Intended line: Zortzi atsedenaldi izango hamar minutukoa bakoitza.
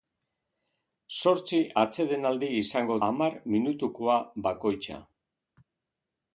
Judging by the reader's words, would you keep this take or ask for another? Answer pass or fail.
pass